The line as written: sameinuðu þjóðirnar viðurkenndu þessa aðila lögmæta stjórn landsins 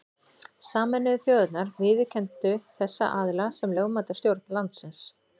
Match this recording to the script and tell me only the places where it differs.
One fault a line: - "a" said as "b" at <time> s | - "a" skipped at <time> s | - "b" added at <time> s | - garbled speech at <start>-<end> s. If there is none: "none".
- "sem" added at 3.6 s